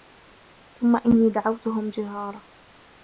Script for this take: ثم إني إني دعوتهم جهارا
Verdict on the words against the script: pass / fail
fail